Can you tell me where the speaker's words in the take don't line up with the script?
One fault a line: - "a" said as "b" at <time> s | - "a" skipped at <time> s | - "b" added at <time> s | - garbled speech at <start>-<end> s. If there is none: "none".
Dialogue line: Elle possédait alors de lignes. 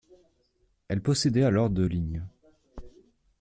none